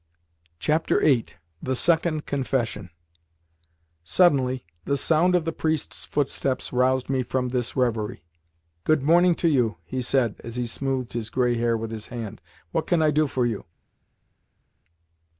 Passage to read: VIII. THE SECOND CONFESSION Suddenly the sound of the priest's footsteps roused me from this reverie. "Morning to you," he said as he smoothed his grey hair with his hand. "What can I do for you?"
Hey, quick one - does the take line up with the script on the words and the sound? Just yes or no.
no